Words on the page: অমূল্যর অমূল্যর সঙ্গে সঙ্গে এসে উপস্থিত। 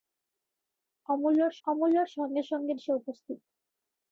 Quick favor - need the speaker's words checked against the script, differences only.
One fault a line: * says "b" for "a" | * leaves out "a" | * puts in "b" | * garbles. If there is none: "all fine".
all fine